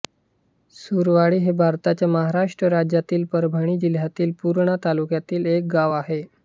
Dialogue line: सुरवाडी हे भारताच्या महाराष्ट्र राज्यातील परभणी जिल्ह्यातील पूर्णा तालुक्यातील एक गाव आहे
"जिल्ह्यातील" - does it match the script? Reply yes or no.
yes